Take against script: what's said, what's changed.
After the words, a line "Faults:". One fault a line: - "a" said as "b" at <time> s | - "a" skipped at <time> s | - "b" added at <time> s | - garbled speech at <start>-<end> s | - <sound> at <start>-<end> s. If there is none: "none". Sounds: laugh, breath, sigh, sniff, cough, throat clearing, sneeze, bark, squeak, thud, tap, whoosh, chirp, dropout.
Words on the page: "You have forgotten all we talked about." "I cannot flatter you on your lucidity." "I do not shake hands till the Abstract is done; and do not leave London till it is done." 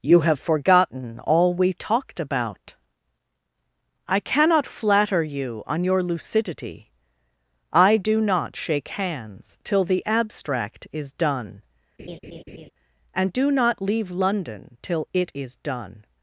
"You have forgotten all we talked about." "I cannot flatter you on your lucidity." "I do not shake hands till the Abstract is done; and do not leave London till it is done."
Faults:
- laugh at 12.0-12.7 s